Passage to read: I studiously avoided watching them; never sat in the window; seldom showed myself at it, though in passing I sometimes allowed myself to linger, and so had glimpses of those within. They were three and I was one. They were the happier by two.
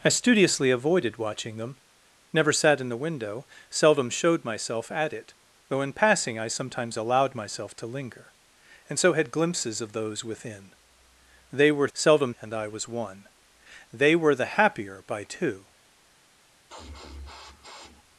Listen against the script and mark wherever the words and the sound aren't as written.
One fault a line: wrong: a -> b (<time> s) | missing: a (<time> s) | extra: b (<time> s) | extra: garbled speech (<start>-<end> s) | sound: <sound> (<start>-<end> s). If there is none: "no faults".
wrong: three -> seldom (11.9 s)
sound: sniff (16.7-18.0 s)